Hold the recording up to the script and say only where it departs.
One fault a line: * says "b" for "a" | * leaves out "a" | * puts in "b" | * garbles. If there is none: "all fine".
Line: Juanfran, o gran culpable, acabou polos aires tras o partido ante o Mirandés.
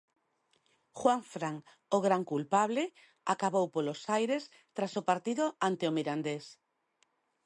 all fine